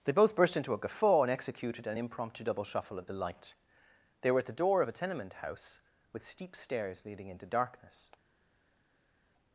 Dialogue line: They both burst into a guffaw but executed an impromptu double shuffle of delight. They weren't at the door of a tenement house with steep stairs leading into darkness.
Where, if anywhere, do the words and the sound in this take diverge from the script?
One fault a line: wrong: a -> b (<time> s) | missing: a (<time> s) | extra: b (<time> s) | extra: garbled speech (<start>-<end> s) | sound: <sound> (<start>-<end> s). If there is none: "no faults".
wrong: but -> and (1.2 s)
wrong: weren't -> were (4.3 s)